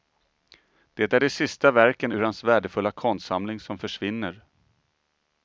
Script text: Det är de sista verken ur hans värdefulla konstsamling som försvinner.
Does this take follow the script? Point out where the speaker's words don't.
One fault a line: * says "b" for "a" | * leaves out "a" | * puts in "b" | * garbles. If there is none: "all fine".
all fine